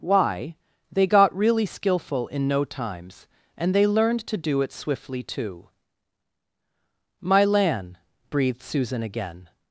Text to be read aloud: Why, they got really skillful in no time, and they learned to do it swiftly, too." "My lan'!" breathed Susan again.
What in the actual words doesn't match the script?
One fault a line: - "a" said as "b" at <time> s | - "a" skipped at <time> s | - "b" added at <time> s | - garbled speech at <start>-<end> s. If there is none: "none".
- "time" said as "times" at 2.6 s